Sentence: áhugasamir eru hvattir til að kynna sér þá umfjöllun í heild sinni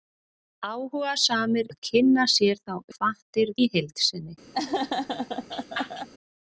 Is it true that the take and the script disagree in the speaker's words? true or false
true